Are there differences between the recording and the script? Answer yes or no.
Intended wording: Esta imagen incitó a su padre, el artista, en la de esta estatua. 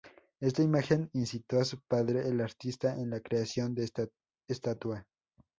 yes